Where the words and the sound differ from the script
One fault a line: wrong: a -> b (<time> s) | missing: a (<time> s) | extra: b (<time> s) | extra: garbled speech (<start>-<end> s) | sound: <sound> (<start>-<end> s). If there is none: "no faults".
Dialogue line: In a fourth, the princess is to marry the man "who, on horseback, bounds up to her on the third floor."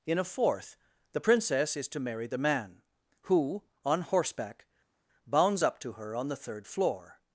no faults